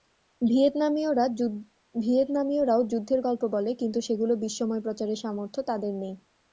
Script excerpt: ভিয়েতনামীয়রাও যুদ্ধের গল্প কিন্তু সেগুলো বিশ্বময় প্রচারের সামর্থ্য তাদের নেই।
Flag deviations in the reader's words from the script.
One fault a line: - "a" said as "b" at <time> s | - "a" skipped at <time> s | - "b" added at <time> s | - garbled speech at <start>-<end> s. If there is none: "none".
- "বলে" added at 3.5 s